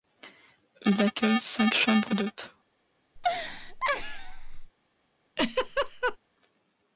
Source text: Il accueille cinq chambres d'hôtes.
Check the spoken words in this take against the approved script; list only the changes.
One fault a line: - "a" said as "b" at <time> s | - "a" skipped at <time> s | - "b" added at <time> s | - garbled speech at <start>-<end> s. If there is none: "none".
none